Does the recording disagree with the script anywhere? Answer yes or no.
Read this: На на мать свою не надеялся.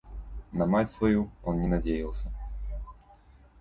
yes